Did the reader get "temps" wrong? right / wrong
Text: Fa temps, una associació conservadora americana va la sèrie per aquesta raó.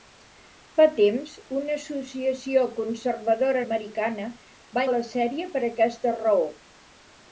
right